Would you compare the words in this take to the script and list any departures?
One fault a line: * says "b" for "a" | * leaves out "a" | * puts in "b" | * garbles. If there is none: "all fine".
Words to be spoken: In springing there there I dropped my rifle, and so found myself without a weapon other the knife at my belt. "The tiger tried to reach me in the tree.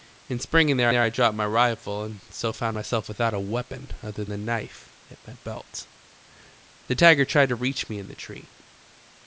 all fine